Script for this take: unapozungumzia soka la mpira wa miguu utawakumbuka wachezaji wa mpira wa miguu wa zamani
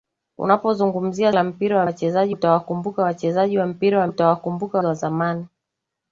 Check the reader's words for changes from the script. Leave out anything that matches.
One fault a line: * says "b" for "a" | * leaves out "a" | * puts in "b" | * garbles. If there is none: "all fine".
* leaves out "soka"
* says "wachezaji" for "miguu"
* says "utawakumbuka" for "miguu"